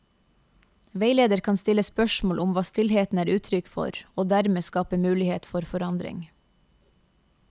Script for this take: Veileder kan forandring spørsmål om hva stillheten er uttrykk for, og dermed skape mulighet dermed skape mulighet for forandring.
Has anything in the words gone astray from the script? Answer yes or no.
yes